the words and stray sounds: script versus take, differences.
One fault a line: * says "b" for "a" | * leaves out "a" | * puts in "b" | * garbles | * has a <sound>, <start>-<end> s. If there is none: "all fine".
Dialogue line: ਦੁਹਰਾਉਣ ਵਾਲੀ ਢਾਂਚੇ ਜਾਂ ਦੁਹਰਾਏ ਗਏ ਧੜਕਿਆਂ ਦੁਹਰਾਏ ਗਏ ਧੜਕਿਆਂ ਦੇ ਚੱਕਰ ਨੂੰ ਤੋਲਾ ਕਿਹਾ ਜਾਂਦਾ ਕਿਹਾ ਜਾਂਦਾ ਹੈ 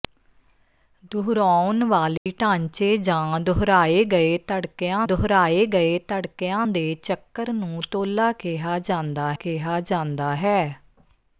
* has a dropout, 2.2-2.3 s